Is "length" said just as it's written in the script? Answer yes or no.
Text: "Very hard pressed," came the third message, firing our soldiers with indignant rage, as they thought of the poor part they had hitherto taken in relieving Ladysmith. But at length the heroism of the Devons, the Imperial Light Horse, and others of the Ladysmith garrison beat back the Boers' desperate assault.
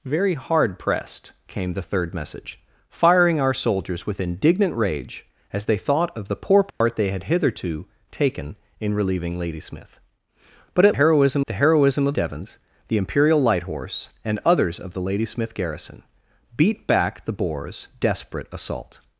no